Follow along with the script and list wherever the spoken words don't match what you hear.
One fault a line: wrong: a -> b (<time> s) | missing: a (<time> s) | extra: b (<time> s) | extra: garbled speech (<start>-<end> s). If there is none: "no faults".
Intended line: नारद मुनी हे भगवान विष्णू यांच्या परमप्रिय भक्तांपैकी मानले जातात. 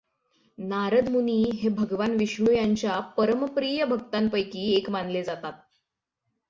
extra: एक (4.7 s)